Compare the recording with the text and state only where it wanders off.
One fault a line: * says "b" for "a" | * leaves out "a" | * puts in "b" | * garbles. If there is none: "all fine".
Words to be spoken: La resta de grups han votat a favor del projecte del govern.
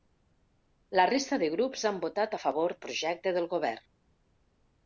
* leaves out "del"